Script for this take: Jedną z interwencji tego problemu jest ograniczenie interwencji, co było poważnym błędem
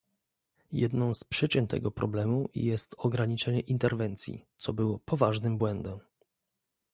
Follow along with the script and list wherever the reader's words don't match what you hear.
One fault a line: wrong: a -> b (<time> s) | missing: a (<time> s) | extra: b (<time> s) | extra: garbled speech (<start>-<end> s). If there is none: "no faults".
wrong: interwencji -> przyczyn (1.2 s)